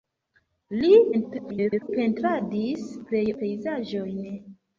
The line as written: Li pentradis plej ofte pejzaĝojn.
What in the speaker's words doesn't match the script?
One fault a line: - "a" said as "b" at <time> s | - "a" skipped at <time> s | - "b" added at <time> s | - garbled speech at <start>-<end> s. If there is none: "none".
- garbled speech at 1.1-1.9 s
- "ofte" skipped at 3.2 s